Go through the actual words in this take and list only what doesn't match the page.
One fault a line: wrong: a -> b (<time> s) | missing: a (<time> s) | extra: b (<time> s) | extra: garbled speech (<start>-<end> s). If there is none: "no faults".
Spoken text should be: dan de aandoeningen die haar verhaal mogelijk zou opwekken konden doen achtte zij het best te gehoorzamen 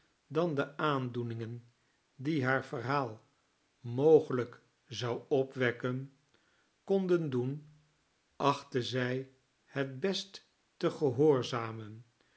no faults